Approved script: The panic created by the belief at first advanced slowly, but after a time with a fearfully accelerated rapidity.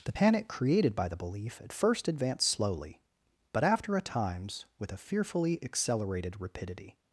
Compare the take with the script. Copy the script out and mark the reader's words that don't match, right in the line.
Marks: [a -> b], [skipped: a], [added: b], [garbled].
The panic created by the belief at first advanced slowly, but after a [time -> times] with a fearfully accelerated rapidity.